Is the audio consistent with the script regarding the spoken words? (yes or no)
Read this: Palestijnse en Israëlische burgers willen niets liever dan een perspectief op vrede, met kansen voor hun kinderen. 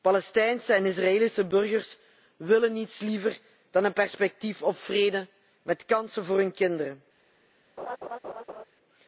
yes